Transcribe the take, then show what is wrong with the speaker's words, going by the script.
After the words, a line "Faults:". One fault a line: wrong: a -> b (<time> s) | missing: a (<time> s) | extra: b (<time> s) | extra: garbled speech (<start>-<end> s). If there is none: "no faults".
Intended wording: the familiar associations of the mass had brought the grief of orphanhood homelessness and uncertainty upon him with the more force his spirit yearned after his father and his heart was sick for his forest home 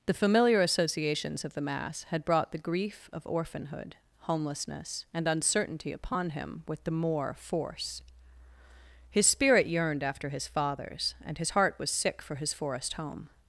the familiar associations of the mass had brought the grief of orphanhood homelessness and uncertainty upon him with the more force his spirit yearned after his fathers and his heart was sick for his forest home
Faults:
wrong: father -> fathers (10.5 s)